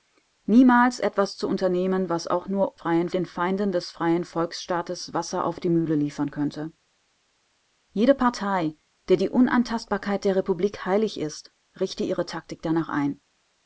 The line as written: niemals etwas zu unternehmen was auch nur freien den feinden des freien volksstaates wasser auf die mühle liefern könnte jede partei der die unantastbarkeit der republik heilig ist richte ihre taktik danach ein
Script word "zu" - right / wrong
right